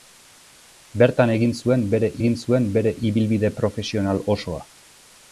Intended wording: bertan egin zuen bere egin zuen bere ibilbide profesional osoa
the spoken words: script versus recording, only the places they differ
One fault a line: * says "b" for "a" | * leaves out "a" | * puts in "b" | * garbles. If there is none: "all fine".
all fine